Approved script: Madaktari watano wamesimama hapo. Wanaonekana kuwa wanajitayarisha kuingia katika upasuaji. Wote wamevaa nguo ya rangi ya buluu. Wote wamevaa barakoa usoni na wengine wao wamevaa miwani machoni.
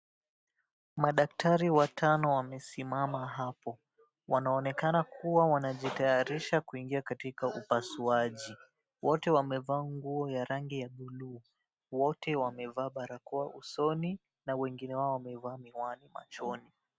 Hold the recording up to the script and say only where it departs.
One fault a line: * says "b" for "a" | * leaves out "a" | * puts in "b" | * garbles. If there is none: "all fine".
all fine